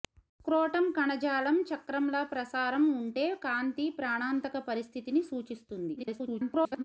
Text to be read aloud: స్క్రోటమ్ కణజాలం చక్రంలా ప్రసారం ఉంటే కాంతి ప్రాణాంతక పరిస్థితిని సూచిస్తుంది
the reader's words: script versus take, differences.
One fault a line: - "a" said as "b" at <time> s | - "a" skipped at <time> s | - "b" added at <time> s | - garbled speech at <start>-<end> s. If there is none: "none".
- garbled speech at 6.0-6.8 s